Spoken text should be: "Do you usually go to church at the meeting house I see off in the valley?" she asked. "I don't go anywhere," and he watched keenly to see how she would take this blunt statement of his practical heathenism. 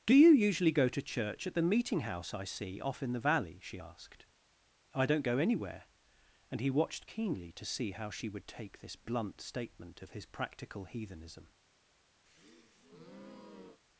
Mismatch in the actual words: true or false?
false